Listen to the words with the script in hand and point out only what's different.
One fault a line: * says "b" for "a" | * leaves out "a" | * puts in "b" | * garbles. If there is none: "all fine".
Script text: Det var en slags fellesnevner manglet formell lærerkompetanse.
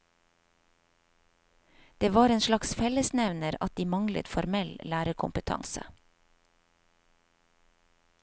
* puts in "at de"